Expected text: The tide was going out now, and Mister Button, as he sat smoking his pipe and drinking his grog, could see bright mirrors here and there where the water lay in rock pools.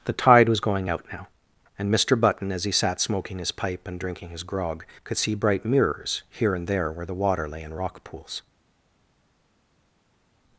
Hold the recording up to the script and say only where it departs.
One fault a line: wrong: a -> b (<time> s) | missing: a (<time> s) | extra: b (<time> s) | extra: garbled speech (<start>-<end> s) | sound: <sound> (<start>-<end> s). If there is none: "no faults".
no faults